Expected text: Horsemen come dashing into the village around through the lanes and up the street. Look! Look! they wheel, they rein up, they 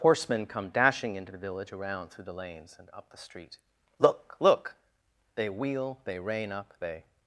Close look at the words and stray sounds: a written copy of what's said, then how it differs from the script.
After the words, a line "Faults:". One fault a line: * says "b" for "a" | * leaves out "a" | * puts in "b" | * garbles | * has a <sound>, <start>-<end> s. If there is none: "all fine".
Horsemen come dashing into the village around through the lanes and up the street. Look! Look! they wheel, they rein up, they
Faults:
all fine